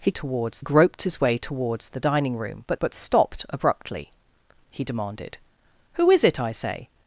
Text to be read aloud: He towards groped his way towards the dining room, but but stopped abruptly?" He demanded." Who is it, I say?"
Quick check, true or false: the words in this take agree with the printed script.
true